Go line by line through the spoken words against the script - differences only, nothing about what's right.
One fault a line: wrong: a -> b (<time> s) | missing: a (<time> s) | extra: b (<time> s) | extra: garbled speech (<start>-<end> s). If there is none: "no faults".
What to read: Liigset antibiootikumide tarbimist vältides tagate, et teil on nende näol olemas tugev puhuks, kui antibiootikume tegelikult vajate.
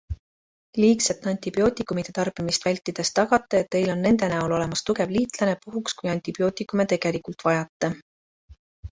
extra: liitlane (5.2 s)